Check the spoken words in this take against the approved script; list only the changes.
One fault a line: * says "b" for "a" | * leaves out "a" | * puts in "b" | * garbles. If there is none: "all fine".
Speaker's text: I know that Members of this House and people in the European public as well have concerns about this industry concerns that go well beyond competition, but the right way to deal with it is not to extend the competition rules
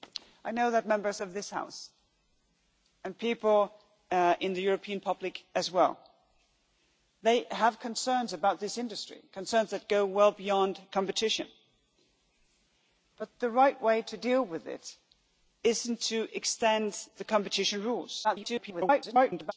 * garbles